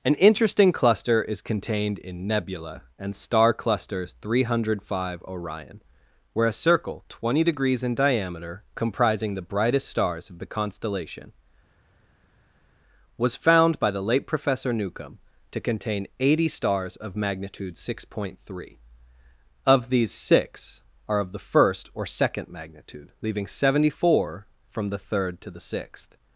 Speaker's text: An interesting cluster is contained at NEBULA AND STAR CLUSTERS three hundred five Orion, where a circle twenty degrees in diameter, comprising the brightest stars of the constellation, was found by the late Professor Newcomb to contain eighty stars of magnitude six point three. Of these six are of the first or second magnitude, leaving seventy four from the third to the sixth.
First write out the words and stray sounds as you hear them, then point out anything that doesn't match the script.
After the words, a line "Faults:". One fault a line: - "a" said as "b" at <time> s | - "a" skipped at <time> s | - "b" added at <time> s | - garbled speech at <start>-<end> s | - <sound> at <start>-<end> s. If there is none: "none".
An interesting cluster is contained in NEBULA AND STAR CLUSTERS three hundred five Orion, where a circle twenty degrees in diameter, comprising the brightest stars of the constellation, was found by the late Professor Newcomb to contain eighty stars of magnitude six point three. Of these six are of the first or second magnitude, leaving seventy four from the third to the sixth.
Faults:
- "at" said as "in" at 2.0 s